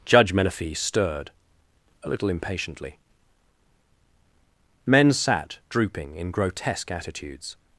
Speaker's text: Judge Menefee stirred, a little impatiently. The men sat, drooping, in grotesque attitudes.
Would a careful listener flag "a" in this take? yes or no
no